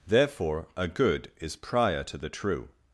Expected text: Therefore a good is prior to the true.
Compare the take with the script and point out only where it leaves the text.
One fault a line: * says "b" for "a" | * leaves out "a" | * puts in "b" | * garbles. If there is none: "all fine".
all fine